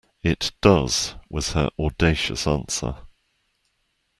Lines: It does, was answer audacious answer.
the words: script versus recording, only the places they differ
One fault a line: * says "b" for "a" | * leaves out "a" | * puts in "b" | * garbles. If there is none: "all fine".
* says "her" for "answer"